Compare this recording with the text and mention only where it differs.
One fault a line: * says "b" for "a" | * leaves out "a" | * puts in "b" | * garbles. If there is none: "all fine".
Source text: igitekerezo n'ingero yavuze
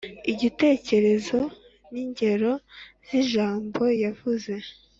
* puts in "z'ijambo"